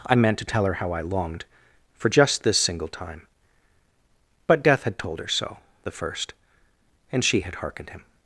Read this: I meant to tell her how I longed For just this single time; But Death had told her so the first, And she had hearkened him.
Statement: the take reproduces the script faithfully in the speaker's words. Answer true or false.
true